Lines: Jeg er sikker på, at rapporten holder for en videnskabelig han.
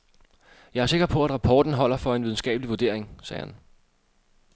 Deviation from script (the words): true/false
true